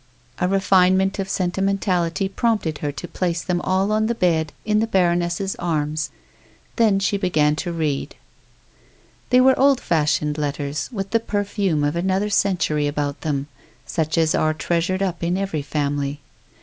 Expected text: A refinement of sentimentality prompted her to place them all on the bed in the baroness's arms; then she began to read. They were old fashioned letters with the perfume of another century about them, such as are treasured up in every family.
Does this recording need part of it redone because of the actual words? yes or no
no